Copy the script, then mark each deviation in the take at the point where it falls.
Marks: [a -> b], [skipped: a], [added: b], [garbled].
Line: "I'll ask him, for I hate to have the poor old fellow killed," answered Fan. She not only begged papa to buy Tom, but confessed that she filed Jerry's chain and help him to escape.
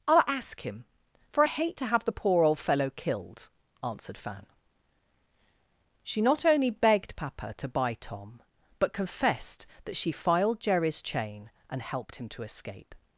"I'll ask him, for I hate to have the poor old fellow killed," answered Fan. She not only begged papa to buy Tom, but confessed that she filed Jerry's chain and [help -> helped] him to escape.